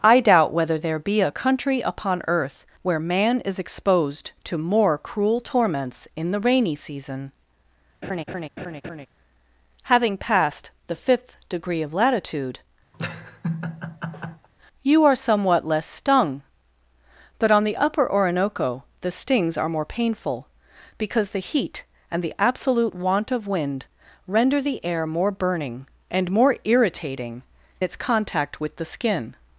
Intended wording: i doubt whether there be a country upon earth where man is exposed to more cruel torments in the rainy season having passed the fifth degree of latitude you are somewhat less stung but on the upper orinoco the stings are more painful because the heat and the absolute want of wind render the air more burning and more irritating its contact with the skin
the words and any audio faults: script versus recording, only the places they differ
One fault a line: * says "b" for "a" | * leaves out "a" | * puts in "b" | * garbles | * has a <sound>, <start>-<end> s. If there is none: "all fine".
* has a laugh, 8.0-9.1 s
* has a laugh, 12.9-14.5 s